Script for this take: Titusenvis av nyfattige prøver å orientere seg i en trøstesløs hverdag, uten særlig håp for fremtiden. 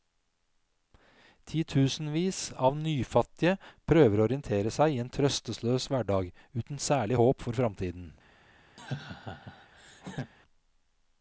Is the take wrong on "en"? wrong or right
right